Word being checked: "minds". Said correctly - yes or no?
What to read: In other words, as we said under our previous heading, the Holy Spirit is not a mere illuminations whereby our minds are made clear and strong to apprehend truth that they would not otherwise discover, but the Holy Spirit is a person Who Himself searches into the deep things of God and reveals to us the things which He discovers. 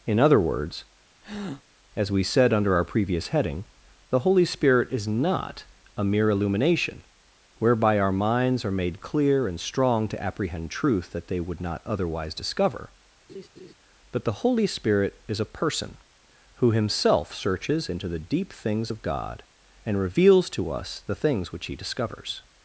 yes